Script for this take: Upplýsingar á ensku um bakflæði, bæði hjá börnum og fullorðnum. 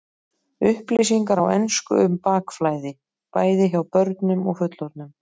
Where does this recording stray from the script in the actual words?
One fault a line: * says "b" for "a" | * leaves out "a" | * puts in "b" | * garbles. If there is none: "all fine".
all fine